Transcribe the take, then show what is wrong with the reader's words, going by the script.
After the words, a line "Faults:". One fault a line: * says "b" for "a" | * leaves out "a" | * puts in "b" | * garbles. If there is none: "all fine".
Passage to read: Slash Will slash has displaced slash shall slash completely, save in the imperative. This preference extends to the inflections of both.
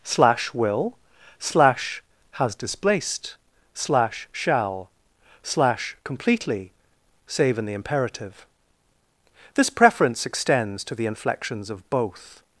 Slash Will slash has displaced slash shall slash completely, save in the imperative. This preference extends to the inflections of both.
Faults:
all fine